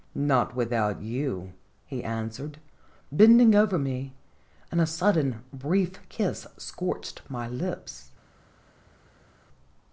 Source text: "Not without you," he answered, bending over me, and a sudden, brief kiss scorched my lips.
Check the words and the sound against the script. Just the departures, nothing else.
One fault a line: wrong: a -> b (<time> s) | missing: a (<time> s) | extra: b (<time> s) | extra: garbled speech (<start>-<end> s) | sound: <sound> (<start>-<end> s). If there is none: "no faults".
no faults